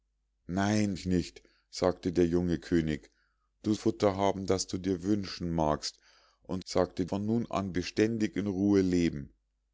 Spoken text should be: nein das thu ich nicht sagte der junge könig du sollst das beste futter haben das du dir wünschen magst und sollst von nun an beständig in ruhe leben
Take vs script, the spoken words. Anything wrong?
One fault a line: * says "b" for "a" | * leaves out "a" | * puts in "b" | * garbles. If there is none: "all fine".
* leaves out "das thu"
* leaves out "sollst das beste"
* says "sagte" for "sollst"